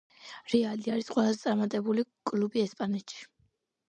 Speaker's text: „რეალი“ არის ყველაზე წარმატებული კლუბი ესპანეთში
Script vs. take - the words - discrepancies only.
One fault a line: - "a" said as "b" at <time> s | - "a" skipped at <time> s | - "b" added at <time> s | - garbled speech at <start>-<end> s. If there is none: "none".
none